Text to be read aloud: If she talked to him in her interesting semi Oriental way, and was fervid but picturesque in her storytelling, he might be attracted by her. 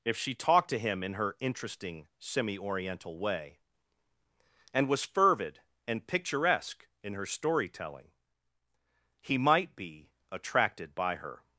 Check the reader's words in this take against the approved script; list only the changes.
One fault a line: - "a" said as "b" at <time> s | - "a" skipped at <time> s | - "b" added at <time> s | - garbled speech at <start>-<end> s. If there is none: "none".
- "but" said as "and" at 5.9 s